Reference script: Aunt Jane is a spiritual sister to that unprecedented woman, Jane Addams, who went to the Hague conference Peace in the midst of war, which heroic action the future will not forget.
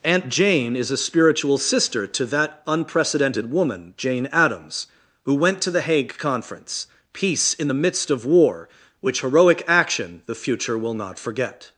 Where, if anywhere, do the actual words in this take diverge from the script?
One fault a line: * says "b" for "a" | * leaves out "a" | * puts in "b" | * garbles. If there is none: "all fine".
all fine